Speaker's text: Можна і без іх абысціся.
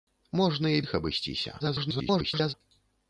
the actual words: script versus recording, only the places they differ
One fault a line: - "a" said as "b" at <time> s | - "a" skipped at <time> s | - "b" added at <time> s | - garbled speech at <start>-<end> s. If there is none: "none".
- "без" skipped at 0.8 s
- garbled speech at 1.6-2.5 s